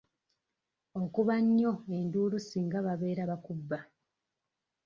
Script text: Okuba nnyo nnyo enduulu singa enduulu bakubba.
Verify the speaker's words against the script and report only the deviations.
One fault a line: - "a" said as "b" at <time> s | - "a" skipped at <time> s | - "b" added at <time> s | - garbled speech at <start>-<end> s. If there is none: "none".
- "nnyo" skipped at 1.7 s
- "enduulu" said as "babeera" at 2.9 s